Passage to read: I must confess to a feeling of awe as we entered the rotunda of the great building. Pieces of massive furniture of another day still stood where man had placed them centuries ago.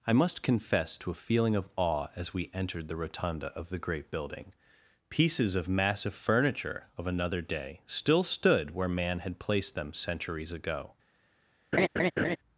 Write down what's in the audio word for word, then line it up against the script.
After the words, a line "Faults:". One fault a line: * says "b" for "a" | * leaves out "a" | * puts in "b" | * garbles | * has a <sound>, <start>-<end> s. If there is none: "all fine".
I must confess to a feeling of awe as we entered the rotunda of the great building. Pieces of massive furniture of another day still stood where man had placed them centuries ago.
Faults:
* has a laugh, 11.7-12.4 s